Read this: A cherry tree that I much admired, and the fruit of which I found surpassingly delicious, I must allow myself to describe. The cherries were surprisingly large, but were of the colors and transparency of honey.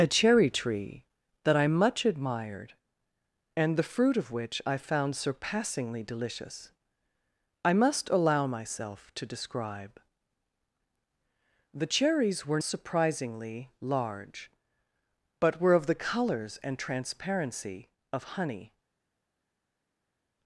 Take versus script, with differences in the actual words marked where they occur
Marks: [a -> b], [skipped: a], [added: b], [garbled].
A cherry tree that I much admired, and the fruit of which I found surpassingly delicious, I must allow myself to describe. The cherries were surprisingly large, but were of the colors and transparency of honey.